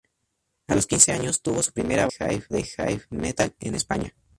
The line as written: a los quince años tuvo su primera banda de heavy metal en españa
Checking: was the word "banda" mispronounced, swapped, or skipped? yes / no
yes